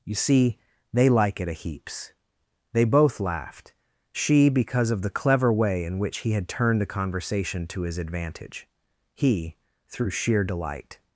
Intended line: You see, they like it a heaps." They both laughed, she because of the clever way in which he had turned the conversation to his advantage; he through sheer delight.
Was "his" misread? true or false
false